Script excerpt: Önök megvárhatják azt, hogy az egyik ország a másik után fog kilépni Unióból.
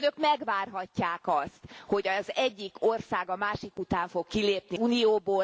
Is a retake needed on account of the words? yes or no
no